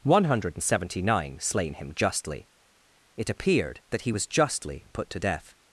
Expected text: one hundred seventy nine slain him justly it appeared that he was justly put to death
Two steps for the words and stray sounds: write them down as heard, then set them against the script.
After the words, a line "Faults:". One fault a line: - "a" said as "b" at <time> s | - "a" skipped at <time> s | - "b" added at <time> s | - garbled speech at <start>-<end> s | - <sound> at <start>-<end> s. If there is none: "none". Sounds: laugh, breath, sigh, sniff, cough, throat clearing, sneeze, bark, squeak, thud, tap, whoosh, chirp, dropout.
one hundred seventy nine slain him justly it appeared that he was justly put to death
Faults:
none